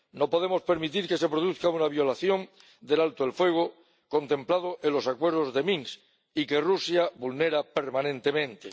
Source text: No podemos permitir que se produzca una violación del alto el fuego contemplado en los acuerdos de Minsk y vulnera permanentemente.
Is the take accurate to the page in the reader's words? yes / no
no